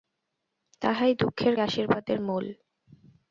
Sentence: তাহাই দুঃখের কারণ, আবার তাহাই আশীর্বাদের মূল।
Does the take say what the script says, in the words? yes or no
no